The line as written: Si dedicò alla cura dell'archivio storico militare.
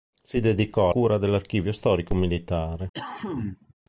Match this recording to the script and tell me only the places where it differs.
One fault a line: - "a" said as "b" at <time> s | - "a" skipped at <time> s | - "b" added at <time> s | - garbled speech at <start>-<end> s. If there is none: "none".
- "alla" skipped at 0.9 s